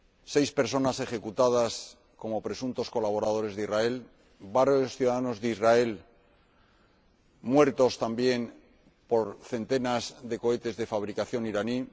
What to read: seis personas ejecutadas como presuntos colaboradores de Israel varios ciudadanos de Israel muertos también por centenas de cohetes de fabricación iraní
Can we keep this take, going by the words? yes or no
yes